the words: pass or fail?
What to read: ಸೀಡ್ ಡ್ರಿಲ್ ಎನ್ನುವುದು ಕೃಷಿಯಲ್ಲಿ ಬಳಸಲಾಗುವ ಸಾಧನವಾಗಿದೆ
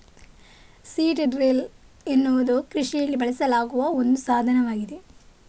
fail